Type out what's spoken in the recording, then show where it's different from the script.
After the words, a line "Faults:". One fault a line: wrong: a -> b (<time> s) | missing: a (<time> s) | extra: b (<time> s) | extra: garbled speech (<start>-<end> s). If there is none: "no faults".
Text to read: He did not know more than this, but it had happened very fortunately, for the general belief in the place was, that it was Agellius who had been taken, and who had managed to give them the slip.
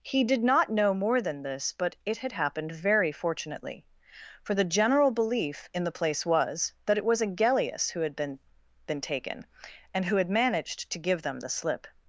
He did not know more than this, but it had happened very fortunately, for the general belief in the place was, that it was Agellius who had been been taken, and who had managed to give them the slip.
Faults:
extra: been (8.9 s)